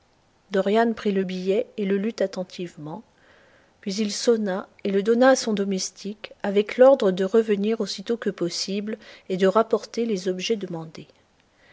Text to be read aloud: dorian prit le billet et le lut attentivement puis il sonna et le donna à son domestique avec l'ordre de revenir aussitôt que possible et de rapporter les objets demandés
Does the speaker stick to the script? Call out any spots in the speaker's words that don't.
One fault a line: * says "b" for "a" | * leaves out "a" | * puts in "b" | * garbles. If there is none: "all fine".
all fine